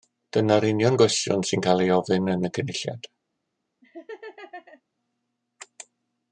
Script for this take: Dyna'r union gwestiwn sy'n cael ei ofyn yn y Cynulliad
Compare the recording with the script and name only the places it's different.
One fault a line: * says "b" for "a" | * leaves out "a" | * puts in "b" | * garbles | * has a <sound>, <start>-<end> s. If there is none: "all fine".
* has a laugh, 3.8-4.8 s